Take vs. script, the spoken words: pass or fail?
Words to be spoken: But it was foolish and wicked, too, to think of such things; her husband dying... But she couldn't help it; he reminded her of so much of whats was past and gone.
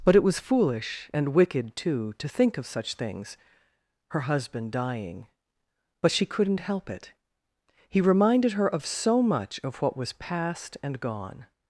fail